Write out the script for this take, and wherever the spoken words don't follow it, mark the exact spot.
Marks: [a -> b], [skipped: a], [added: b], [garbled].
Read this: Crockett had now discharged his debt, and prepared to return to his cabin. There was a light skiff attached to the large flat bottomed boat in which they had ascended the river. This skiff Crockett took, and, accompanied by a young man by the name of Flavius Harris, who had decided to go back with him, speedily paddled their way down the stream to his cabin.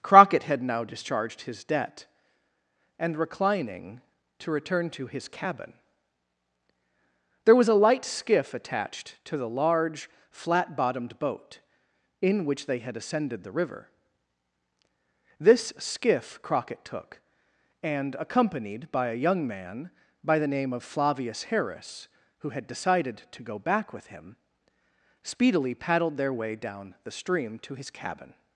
Crockett had now discharged his debt, and [prepared -> reclining] to return to his cabin. There was a light skiff attached to the large flat bottomed boat in which they had ascended the river. This skiff Crockett took, and, accompanied by a young man by the name of Flavius Harris, who had decided to go back with him, speedily paddled their way down the stream to his cabin.